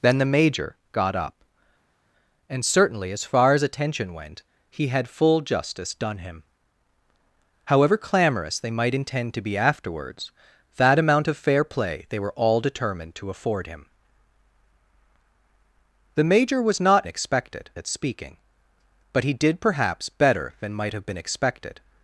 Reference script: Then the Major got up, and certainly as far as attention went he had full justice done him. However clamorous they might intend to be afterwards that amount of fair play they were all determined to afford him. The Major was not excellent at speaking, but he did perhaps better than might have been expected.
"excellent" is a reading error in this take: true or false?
true